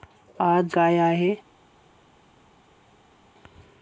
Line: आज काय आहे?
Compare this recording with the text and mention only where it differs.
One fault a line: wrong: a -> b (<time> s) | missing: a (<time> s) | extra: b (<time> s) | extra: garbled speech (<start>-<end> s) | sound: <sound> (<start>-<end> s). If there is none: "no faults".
no faults